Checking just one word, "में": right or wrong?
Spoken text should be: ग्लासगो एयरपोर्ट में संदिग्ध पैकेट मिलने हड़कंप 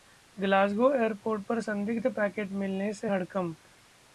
wrong